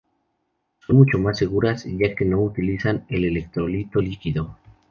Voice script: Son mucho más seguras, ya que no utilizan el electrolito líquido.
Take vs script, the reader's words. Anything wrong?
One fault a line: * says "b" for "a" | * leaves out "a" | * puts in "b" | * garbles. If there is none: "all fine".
all fine